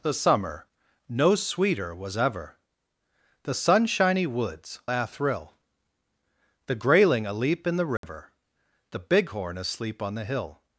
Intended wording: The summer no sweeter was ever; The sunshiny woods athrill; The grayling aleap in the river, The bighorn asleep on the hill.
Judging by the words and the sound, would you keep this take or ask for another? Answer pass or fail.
fail